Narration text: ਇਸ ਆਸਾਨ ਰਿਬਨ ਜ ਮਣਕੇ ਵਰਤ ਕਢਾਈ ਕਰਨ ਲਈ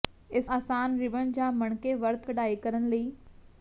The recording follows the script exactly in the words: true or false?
true